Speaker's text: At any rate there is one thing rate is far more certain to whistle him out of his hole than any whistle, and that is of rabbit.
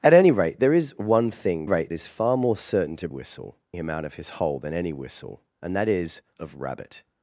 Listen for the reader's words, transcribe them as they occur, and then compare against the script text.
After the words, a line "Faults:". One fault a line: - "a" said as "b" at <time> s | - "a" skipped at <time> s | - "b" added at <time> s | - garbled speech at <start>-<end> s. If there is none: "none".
At any rate there is one thing rate is far more certain to whistle him out of his hole than any whistle, and that is of rabbit.
Faults:
none